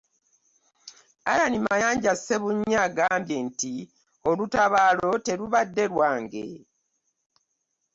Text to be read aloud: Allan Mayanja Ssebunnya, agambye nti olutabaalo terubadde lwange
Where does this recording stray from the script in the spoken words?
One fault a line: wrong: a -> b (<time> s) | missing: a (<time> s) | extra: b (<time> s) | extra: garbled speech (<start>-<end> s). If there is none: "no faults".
no faults